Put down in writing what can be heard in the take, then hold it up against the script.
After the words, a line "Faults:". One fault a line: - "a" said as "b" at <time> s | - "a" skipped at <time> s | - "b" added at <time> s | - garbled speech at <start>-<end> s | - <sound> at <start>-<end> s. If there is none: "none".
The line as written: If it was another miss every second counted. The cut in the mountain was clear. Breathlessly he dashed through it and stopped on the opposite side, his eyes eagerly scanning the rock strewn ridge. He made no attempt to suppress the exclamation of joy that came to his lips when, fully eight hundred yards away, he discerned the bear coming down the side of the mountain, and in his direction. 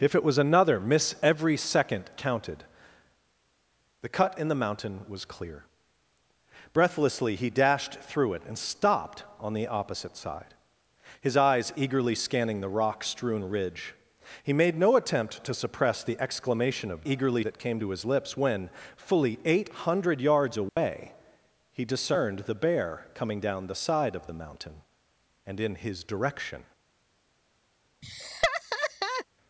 If it was another miss every second counted. The cut in the mountain was clear. Breathlessly he dashed through it and stopped on the opposite side, his eyes eagerly scanning the rock strewn ridge. He made no attempt to suppress the exclamation of eagerly that came to his lips when, fully eight hundred yards away, he discerned the bear coming down the side of the mountain, and in his direction.
Faults:
- "joy" said as "eagerly" at 17.0 s
- dropout at 20.7-20.8 s
- laugh at 28.0-29.3 s